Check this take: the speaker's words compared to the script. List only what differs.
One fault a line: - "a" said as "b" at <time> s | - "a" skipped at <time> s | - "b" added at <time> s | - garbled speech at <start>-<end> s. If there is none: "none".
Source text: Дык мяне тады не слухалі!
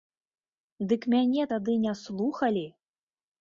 none